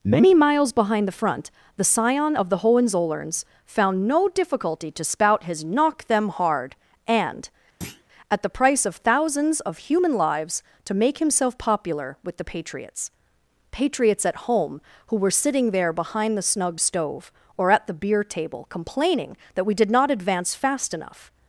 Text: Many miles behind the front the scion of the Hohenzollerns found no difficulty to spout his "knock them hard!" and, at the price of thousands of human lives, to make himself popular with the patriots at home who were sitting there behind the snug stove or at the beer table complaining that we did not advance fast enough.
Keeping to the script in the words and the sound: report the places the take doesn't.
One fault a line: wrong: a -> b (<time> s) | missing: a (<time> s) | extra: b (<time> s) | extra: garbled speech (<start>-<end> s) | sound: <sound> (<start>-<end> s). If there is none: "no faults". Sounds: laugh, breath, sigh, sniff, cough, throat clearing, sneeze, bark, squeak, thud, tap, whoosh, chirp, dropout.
sound: thud (7.8-8.0 s)
extra: patriots (13.7 s)